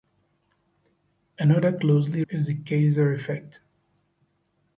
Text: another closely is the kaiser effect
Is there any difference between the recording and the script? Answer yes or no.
no